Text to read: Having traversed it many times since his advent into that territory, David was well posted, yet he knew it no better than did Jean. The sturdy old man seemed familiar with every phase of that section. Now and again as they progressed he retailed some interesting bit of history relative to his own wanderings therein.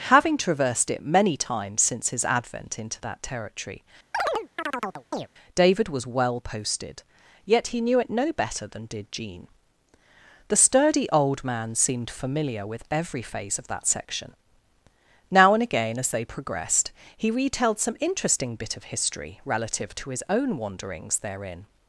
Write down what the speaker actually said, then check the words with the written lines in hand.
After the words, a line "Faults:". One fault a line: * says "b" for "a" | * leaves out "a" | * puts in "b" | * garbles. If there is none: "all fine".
Having traversed it many times since his advent into that territory, David was well posted, yet he knew it no better than did Jean. The sturdy old man seemed familiar with every phase of that section. Now and again as they progressed he retailed some interesting bit of history relative to his own wanderings therein.
Faults:
all fine